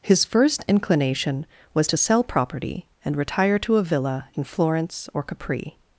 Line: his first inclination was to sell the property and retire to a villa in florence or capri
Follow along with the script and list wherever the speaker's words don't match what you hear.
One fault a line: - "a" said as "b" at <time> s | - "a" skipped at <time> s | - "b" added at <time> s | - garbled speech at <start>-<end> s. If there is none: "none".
- "the" skipped at 2.2 s